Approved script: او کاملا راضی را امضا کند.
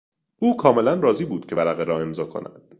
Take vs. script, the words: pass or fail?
fail